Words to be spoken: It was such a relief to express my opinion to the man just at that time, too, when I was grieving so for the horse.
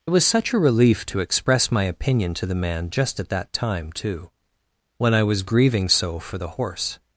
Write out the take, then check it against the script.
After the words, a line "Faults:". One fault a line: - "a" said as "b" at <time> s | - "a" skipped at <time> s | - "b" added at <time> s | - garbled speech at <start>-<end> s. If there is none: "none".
It was such a relief to express my opinion to the man just at that time, too, when I was grieving so for the horse.
Faults:
none